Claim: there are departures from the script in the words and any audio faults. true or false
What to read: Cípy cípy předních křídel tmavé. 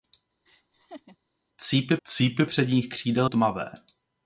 true